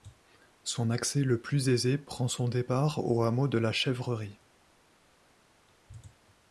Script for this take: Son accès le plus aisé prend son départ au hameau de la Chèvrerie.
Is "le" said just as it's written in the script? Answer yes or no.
yes